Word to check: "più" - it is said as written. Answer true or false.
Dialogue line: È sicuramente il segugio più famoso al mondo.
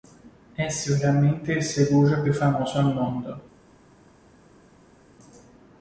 true